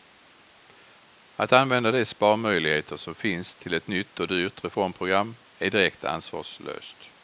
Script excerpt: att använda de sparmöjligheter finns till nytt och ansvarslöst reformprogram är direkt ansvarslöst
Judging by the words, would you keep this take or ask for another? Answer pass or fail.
fail